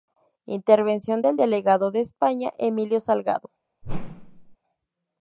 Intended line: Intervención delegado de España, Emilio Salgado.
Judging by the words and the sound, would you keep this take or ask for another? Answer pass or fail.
fail